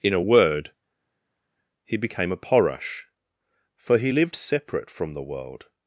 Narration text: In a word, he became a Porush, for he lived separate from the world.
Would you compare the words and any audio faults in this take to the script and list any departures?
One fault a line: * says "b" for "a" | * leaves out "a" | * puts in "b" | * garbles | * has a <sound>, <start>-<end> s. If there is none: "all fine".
all fine